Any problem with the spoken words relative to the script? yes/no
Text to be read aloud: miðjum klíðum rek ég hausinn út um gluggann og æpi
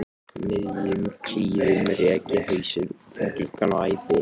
no